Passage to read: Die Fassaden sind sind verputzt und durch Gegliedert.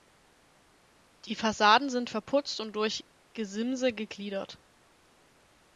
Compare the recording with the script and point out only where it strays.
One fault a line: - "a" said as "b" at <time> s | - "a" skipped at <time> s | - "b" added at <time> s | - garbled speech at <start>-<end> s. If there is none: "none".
- "sind" skipped at 2.1 s
- "Gesimse" added at 3.3 s